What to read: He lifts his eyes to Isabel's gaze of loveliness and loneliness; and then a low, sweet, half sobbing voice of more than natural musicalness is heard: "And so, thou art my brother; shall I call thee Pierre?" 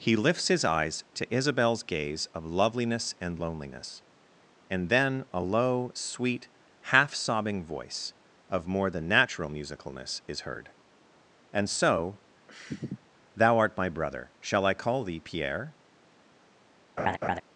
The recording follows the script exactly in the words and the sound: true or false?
false